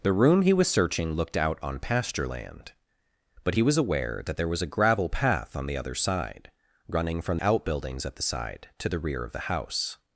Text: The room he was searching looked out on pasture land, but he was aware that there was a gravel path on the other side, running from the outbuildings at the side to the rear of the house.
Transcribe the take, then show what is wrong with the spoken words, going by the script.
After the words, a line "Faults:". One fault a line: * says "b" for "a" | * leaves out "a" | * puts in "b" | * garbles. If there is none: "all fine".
The room he was searching looked out on pasture land, but he was aware that there was a gravel path on the other side, running from outbuildings at the side to the rear of the house.
Faults:
* leaves out "the"